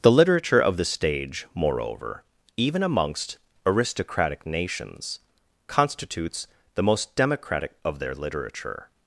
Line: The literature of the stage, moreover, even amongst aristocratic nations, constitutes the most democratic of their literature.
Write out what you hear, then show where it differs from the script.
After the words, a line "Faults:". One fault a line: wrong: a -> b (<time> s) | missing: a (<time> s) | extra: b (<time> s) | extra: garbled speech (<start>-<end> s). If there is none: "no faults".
The literature of the stage, moreover, even amongst aristocratic nations, constitutes the most democratic of their literature.
Faults:
no faults